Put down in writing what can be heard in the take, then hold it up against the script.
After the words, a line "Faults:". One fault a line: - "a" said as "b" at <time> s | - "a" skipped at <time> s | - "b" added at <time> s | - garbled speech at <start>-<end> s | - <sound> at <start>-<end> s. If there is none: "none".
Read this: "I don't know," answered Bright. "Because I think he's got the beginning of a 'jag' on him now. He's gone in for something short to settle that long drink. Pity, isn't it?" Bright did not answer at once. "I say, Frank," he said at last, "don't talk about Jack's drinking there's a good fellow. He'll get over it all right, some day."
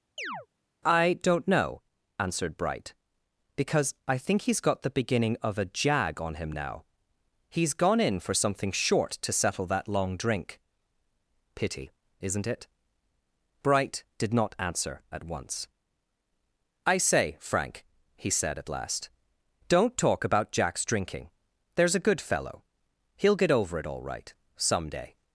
"I don't know," answered Bright. "Because I think he's got the beginning of a 'jag' on him now. He's gone in for something short to settle that long drink. Pity, isn't it?" Bright did not answer at once. "I say, Frank," he said at last, "don't talk about Jack's drinking there's a good fellow. He'll get over it all right, some day."
Faults:
- chirp at 0.2-0.5 s